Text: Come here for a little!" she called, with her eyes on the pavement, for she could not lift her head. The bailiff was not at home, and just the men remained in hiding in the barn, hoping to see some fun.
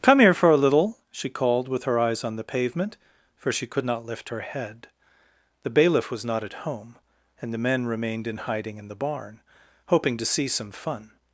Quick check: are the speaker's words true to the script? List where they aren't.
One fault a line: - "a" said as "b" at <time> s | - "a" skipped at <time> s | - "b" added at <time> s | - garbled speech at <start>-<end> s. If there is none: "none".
- "just" skipped at 7.5 s